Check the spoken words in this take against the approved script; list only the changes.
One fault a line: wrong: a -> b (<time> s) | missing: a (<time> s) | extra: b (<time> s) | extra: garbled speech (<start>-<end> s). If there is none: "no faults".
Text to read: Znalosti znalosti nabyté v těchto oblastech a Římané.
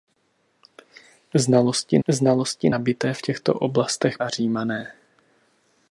no faults